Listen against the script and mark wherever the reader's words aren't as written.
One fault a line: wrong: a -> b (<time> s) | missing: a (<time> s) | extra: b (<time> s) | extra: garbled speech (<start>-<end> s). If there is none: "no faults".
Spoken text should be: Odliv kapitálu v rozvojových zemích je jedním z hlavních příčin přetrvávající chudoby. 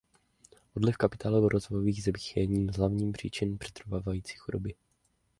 no faults